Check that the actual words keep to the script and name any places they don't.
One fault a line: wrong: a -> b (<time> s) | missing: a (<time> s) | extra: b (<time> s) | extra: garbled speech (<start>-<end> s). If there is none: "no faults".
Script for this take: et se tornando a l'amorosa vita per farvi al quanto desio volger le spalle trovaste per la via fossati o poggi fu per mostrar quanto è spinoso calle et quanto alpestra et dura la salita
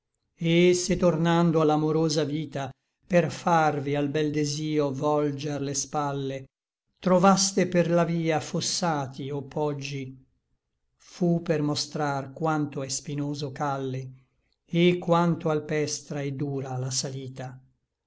wrong: quanto -> bel (4.1 s)